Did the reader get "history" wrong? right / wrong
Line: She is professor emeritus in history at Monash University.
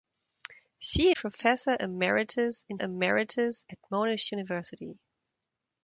wrong